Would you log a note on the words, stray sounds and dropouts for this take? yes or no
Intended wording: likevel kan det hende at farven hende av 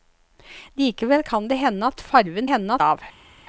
no